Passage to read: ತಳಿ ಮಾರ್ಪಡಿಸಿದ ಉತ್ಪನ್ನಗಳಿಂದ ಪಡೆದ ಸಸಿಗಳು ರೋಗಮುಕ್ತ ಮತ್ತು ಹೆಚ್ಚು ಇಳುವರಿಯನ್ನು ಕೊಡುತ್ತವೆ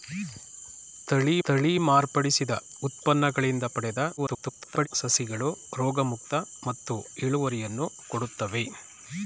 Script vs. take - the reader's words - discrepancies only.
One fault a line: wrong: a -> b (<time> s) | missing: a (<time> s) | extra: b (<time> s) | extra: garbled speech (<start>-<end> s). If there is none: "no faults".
extra: ತಳಿ (1.4 s)
extra: garbled speech (4.2-4.9 s)
missing: ಹೆಚ್ಚು (6.9 s)